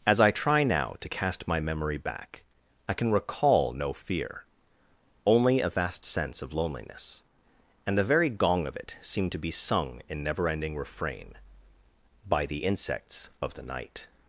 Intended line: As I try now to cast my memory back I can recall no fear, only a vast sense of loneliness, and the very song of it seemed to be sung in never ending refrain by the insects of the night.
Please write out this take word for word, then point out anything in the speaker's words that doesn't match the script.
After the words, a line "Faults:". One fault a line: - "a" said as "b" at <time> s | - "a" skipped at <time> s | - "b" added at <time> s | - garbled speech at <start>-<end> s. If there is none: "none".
As I try now to cast my memory back I can recall no fear, only a vast sense of loneliness, and the very gong of it seemed to be sung in never ending refrain by the insects of the night.
Faults:
- "song" said as "gong" at 8.3 s